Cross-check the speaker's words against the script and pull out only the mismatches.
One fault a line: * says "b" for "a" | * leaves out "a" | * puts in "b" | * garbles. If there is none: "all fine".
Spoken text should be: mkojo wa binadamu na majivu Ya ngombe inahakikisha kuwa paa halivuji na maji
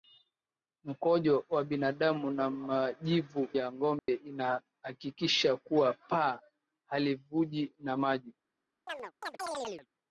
all fine